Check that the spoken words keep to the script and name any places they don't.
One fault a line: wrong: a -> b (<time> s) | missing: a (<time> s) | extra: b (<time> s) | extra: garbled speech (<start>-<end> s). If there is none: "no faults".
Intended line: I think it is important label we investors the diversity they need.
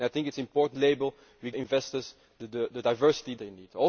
no faults